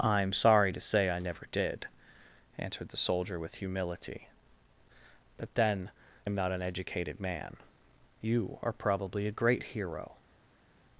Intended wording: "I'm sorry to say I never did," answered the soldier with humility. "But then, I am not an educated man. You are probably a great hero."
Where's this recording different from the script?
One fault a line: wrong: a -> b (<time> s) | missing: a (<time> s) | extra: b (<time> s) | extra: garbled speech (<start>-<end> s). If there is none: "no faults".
missing: I (5.9 s)